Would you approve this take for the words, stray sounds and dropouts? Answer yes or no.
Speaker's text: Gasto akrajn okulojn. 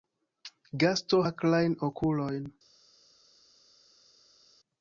yes